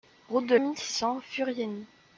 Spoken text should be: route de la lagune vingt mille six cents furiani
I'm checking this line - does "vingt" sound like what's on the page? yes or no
no